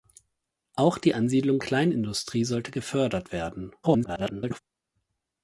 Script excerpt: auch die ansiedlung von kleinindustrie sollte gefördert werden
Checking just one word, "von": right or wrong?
wrong